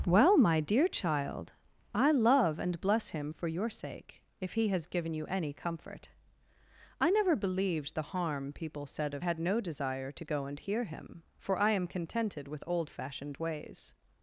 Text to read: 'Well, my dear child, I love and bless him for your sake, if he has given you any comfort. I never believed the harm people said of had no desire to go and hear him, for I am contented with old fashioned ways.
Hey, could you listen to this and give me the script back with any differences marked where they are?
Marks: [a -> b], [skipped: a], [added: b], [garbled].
'Well, my dear child, I love and bless him for your sake, if he has given you any comfort. I never believed the harm people said of had no desire to go and hear him, for I am contented with old fashioned ways.